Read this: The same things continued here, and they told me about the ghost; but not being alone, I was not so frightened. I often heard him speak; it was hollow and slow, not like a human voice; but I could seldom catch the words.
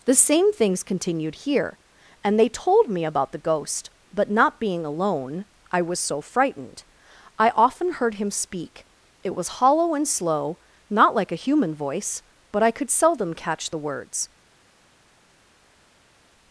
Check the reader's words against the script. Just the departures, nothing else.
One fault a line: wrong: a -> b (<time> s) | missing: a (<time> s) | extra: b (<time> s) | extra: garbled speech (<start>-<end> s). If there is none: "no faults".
missing: not (6.0 s)